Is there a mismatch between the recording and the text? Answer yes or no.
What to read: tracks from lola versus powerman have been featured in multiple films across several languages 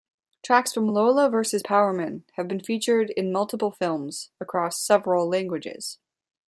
no